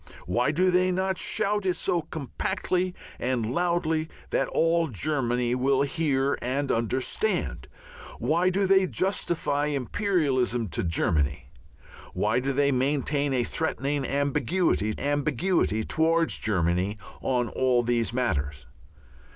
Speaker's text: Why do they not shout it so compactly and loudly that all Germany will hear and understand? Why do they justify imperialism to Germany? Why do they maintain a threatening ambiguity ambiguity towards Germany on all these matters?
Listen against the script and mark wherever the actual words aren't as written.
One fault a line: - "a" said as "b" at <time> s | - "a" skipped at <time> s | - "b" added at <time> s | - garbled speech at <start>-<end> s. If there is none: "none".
none